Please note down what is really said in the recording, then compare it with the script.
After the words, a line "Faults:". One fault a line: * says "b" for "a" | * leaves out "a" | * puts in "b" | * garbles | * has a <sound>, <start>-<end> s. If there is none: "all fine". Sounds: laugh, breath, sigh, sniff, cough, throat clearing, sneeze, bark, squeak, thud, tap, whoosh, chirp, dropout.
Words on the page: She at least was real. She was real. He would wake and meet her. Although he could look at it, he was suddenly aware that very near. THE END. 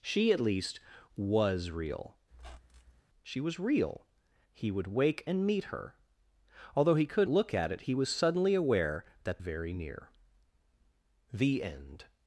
She at least was real. She was real. He would wake and meet her. Although he could look at it, he was suddenly aware that very near. THE END.
Faults:
* has a squeak, 2.3-3.0 s